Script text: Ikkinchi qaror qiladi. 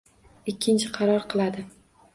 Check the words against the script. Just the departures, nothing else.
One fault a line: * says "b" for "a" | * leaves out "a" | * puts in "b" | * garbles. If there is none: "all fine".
all fine